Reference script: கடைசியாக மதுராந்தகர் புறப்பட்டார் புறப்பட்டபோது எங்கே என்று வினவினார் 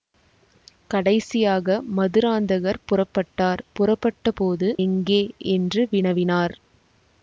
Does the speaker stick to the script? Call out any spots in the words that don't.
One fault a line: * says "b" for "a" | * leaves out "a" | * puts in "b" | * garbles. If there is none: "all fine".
all fine